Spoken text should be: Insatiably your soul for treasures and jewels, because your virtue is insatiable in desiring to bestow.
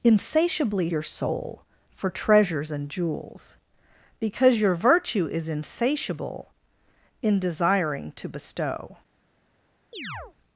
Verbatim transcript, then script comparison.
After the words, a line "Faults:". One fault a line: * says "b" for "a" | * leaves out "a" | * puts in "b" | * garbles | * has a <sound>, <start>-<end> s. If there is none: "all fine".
Insatiably your soul for treasures and jewels, because your virtue is insatiable in desiring to bestow.
Faults:
* has a chirp, 9.9-10.3 s